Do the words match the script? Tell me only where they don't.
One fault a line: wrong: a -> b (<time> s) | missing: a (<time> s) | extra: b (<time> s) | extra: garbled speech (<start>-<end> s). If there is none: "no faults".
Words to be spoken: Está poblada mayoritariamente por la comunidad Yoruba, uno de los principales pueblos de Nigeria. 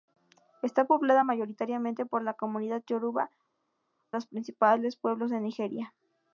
missing: uno de (3.3 s)